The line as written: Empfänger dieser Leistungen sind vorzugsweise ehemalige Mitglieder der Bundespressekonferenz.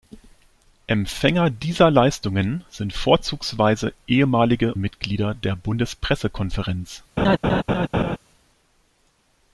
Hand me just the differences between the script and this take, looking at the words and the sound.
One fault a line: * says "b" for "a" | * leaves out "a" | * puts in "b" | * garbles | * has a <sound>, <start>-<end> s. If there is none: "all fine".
* has a laugh, 7.2-8.2 s